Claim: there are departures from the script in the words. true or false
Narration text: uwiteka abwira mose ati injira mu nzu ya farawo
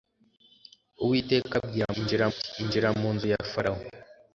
true